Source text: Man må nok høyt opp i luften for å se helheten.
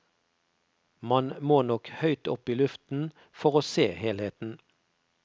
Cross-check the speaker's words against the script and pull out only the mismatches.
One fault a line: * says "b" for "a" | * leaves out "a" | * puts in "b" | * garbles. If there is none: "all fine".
all fine